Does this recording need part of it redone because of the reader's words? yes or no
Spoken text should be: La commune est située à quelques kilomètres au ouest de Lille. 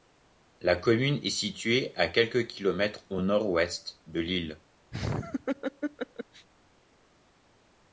yes